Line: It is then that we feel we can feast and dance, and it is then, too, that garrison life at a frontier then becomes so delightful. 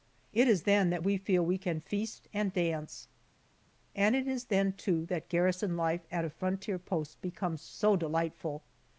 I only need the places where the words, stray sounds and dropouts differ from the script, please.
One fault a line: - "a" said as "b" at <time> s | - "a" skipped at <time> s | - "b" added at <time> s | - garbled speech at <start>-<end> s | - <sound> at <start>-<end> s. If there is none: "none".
- "then" said as "post" at 6.8 s